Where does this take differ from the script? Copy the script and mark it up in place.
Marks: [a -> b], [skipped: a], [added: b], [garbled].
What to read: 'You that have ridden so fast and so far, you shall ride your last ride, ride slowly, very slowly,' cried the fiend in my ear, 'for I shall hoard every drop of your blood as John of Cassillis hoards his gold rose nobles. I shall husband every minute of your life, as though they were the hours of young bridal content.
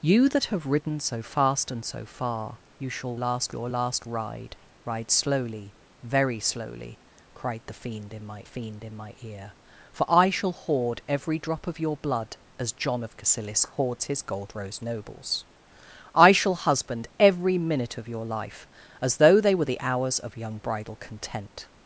'You that have ridden so fast and so far, you shall [ride -> last] your last ride, ride slowly, very slowly,' cried the fiend in my [added: fiend in my] ear, 'for I shall hoard every drop of your blood as John of Cassillis hoards his gold rose nobles. I shall husband every minute of your life, as though they were the hours of young bridal content.